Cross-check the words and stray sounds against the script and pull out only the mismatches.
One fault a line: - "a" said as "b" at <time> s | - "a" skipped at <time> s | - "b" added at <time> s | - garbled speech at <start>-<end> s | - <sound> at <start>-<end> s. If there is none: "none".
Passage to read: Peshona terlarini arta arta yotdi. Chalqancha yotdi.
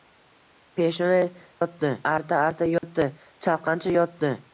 - "terlarini" said as "yotdi" at 1.6 s
- dropout at 2.8-2.8 s